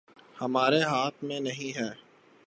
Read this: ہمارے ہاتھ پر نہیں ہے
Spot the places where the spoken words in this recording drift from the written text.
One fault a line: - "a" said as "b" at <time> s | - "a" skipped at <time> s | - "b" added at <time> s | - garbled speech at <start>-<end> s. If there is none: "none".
- "پر" said as "میں" at 1.2 s